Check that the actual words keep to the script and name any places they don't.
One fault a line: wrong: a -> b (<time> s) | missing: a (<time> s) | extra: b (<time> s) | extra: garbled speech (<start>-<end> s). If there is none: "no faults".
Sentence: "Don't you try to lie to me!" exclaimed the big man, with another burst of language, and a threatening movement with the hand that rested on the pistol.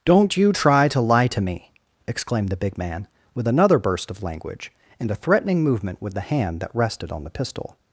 no faults